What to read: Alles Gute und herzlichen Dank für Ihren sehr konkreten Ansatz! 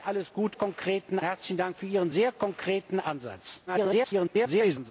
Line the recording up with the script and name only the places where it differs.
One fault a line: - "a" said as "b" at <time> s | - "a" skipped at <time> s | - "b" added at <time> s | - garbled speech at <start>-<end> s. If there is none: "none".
- "und" said as "konkreten" at 0.5 s
- garbled speech at 3.7-4.9 s